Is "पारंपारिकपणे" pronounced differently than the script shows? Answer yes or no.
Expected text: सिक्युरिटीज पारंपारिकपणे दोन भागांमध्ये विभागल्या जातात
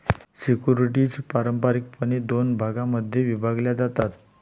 no